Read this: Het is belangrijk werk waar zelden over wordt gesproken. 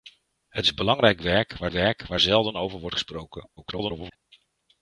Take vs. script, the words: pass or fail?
fail